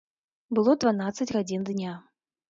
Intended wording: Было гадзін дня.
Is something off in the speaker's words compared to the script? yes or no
yes